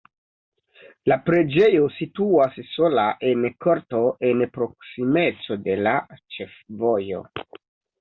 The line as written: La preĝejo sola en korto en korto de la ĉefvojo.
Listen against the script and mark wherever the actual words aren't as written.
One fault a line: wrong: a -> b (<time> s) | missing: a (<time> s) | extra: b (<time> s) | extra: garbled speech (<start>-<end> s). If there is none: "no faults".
extra: situas (2.0 s)
wrong: korto -> proksimeco (4.6 s)